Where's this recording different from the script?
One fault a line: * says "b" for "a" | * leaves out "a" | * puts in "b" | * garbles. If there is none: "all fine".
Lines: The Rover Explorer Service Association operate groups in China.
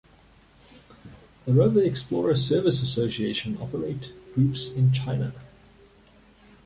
all fine